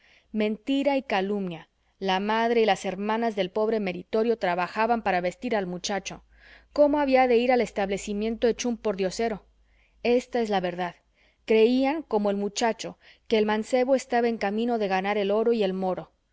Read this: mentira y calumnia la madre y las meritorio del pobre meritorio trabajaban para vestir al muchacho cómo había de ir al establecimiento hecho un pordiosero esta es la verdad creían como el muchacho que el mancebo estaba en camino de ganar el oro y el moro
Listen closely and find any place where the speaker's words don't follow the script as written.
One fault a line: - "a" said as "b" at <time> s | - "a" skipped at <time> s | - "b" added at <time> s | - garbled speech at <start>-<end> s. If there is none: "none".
- "meritorio" said as "hermanas" at 2.9 s